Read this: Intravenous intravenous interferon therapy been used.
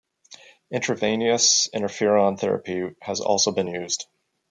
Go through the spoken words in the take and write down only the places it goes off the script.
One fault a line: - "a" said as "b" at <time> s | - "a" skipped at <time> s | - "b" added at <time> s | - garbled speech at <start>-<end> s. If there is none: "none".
- "intravenous" skipped at 1.7 s
- "has also" added at 3.0 s